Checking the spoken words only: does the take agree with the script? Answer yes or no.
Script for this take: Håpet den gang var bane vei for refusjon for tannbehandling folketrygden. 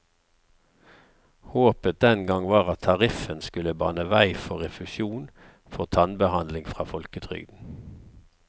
no